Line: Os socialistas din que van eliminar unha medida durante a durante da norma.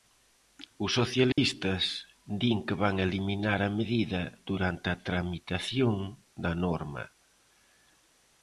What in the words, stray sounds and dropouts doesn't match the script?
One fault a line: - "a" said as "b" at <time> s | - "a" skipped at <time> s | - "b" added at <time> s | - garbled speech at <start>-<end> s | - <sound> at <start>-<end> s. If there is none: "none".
- dropout at 1.3-1.4 s
- "unha" said as "a" at 3.6 s
- "durante" said as "tramitación" at 5.1 s